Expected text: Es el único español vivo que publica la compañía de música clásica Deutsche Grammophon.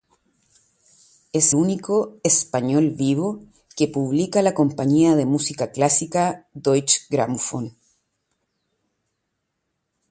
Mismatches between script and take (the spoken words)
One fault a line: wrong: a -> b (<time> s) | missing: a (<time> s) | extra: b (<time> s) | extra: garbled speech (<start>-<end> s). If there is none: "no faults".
missing: el (1.5 s)